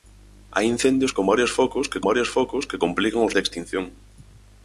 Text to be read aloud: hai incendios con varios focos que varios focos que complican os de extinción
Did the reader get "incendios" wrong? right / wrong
right